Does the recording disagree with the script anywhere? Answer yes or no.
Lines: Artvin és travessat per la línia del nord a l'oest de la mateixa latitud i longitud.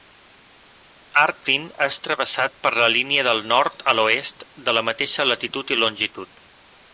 no